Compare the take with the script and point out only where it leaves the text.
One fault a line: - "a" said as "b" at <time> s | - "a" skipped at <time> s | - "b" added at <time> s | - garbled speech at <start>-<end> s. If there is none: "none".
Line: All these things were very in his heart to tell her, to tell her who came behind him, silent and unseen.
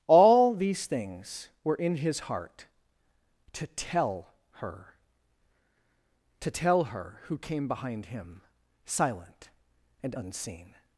- "very" skipped at 1.8 s